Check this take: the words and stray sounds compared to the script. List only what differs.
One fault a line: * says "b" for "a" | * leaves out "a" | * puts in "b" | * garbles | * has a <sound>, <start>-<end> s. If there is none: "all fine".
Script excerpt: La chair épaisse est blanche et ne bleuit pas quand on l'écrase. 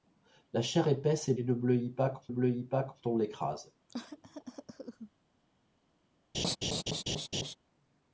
* leaves out "blanche"
* puts in "bleuit pas quand"
* has a cough, 3.9-5.1 s
* has a laugh, 6.3-7.6 s